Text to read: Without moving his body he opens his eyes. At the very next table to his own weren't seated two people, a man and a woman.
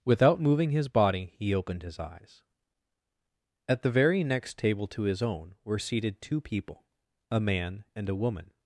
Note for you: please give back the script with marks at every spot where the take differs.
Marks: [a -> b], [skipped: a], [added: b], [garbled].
Without moving his body he [opens -> opened] his eyes. At the very next table to his own [weren't -> were] seated two people, a man and a woman.